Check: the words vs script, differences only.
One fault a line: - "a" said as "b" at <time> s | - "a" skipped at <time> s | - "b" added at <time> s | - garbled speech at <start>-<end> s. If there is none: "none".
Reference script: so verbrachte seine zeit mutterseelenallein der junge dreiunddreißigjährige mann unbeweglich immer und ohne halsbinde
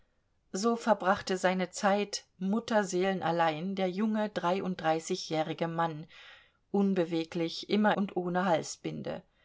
none